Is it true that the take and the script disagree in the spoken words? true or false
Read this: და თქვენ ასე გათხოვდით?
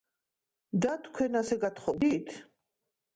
false